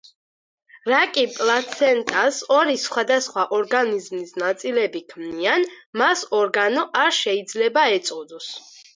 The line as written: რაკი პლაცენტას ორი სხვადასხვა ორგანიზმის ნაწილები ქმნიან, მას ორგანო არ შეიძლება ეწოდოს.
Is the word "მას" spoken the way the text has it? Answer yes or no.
yes